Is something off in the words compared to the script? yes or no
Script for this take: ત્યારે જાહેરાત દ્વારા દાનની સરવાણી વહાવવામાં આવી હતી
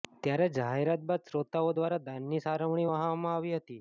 yes